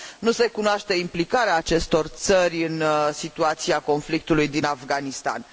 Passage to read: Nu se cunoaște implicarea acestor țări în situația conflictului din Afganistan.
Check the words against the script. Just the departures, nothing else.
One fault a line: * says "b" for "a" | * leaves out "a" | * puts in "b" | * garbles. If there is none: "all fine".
all fine